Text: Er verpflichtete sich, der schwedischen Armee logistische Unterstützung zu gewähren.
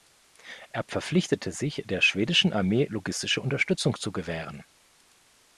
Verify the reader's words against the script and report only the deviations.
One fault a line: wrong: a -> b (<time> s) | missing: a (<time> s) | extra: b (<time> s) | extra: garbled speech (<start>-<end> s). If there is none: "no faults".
no faults